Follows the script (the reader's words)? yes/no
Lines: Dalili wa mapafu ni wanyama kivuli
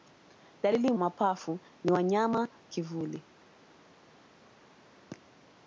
yes